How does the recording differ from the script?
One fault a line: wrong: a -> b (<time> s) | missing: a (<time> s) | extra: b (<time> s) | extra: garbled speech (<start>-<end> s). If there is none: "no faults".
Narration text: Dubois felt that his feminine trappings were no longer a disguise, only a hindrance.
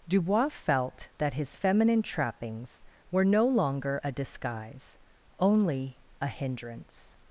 no faults